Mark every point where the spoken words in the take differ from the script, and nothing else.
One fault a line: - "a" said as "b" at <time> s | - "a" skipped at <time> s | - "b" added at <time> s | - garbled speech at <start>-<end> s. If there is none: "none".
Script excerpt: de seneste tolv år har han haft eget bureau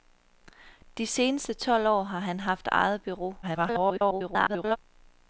- garbled speech at 3.4-4.8 s